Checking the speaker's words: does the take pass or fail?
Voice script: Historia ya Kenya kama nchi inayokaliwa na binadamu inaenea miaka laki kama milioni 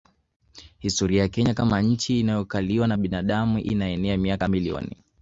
fail